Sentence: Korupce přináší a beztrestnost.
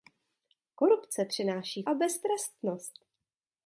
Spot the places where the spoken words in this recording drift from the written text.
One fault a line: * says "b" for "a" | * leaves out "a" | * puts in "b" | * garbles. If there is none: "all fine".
all fine